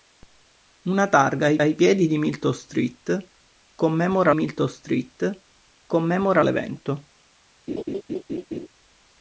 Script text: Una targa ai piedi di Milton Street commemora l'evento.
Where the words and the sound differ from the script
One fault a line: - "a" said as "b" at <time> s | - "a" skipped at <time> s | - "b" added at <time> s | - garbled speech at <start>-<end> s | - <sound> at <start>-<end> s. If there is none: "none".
- "ai" added at 1.6 s
- "Milton Street commemora" added at 4.3 s
- laugh at 7.7-8.7 s